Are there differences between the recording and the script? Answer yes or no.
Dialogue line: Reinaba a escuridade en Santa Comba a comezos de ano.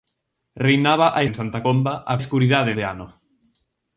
yes